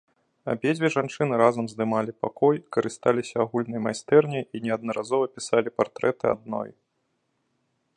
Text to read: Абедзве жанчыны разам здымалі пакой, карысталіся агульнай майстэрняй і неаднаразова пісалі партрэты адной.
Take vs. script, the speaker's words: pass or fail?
pass